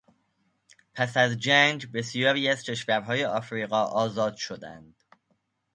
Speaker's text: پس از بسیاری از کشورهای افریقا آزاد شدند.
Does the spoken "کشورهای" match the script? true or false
true